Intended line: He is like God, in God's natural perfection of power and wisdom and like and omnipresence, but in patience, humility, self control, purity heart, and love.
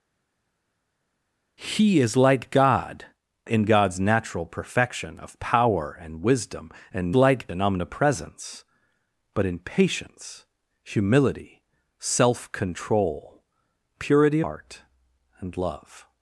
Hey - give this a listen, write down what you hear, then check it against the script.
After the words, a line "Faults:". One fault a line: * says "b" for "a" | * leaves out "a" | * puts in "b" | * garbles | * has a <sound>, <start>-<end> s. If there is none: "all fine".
He is like God, in God's natural perfection of power and wisdom and like and omnipresence, but in patience, humility, self control, purity heart, and love.
Faults:
all fine